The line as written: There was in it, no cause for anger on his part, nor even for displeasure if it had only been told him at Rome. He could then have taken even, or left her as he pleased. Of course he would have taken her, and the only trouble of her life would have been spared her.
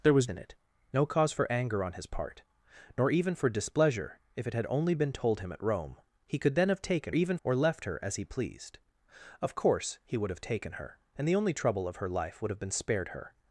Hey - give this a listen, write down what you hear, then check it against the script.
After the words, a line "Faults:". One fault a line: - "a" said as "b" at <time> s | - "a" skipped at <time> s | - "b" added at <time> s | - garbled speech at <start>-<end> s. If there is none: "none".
There was in it, no cause for anger on his part, nor even for displeasure if it had only been told him at Rome. He could then have taken even, or left her as he pleased. Of course he would have taken her, and the only trouble of her life would have been spared her.
Faults:
none